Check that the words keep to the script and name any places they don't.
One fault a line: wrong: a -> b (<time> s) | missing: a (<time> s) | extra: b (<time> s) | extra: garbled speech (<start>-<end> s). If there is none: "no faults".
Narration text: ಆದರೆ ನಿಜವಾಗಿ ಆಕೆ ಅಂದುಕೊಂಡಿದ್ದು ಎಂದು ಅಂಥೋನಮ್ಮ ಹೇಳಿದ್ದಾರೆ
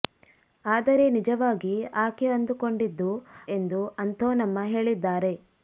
no faults